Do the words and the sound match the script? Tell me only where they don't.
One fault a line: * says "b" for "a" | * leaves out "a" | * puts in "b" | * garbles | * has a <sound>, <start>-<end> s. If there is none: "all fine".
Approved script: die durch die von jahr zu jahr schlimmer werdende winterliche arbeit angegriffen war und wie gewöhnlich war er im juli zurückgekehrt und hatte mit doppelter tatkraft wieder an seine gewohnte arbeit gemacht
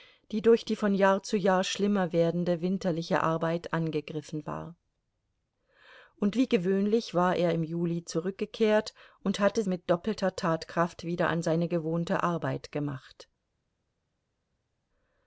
all fine